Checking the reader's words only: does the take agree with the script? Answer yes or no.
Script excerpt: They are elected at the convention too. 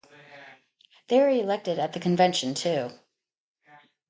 yes